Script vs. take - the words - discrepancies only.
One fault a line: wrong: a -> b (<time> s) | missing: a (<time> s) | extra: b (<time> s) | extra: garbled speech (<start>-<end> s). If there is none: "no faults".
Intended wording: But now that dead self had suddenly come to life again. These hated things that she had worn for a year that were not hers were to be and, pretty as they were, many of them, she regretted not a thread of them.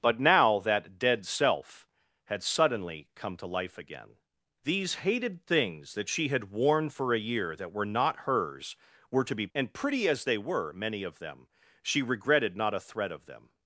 no faults